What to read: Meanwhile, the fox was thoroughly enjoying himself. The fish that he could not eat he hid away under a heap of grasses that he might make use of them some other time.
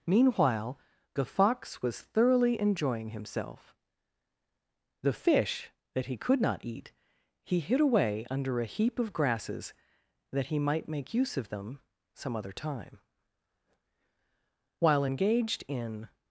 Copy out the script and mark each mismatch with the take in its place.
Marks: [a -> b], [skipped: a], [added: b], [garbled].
Meanwhile, the fox was thoroughly enjoying himself. The fish that he could not eat he hid away under a heap of grasses that he might make use of them some other time. [added: While engaged in]